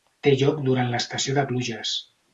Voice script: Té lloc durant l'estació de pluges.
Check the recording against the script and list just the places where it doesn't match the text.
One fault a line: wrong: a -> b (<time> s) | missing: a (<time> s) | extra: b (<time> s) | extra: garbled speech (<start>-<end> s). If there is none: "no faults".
no faults